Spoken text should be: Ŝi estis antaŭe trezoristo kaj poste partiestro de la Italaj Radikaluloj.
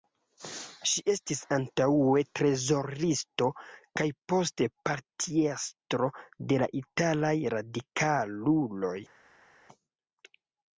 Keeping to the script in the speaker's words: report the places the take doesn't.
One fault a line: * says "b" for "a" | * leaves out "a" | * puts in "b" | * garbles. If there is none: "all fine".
all fine